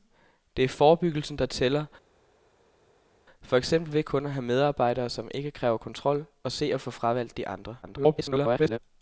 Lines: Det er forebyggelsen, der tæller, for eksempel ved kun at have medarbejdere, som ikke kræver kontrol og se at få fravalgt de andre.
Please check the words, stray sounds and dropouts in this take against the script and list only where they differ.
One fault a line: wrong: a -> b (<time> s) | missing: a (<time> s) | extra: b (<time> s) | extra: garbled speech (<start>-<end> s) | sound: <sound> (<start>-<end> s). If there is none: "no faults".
extra: garbled speech (7.8-8.8 s)